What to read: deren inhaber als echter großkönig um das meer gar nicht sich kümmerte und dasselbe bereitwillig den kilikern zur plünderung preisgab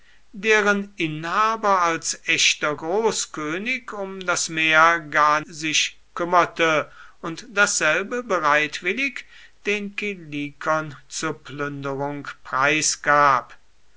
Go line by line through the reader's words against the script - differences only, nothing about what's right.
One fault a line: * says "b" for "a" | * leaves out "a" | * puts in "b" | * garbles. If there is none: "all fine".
* leaves out "nicht"